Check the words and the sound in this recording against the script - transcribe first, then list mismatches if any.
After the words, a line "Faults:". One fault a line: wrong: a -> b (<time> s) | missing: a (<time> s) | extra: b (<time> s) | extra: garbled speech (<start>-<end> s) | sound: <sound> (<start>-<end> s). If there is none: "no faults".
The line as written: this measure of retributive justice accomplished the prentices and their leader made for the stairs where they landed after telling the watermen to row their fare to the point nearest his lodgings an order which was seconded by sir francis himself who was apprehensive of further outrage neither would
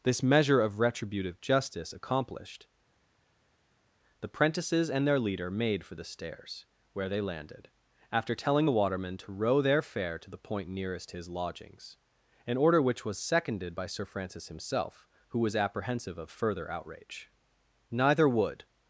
this measure of retributive justice accomplished the prentices and their leader made for the stairs where they landed after telling the watermen to row their fare to the point nearest his lodgings an order which was seconded by sir francis himself who was apprehensive of further outrage neither would
Faults:
no faults